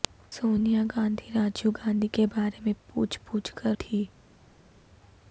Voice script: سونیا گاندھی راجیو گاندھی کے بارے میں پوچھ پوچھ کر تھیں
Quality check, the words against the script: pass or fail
pass